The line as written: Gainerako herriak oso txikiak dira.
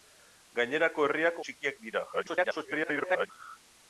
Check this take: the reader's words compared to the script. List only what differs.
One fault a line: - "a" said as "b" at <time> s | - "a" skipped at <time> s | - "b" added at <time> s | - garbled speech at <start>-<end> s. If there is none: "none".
- "oso" skipped at 1.4 s
- garbled speech at 2.1-3.3 s